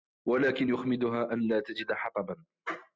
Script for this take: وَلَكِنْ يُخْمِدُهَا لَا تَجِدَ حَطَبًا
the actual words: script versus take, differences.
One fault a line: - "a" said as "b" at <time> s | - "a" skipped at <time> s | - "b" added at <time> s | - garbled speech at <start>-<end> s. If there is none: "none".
- "أَنْ" added at 1.3 s